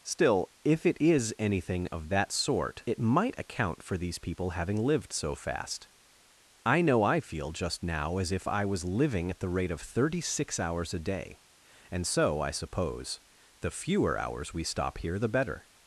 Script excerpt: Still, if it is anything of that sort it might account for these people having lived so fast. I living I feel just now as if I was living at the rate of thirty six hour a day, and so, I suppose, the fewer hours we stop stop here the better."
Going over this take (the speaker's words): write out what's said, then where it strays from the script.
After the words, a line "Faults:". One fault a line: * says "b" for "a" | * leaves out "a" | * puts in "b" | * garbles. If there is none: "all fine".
Still, if it is anything of that sort it might account for these people having lived so fast. I know I feel just now as if I was living at the rate of thirty six hours a day, and so, I suppose, the fewer hours we stop here the better."
Faults:
* says "know" for "living"
* says "hours" for "hour"
* leaves out "stop"